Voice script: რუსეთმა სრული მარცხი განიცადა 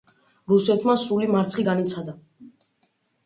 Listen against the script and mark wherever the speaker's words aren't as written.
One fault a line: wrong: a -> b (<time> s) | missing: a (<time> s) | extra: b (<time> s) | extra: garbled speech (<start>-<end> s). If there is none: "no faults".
no faults